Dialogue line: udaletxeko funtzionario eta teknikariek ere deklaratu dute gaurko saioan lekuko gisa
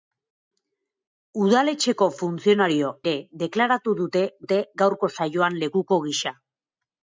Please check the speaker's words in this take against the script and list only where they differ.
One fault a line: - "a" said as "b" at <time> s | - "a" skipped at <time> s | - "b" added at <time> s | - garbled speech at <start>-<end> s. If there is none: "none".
- "eta teknikariek" skipped at 2.9 s
- "dute" added at 4.4 s